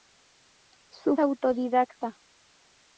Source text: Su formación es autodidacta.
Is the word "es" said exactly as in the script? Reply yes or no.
no